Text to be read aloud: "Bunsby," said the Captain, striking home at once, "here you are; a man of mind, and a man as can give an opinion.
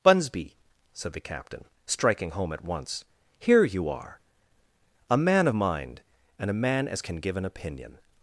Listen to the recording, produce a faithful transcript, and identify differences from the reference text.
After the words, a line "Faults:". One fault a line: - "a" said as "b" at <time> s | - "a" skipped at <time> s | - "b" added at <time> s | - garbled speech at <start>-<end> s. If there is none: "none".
"Bunsby," said the Captain, striking home at once, "here you are; a man of mind, and a man as can give an opinion.
Faults:
none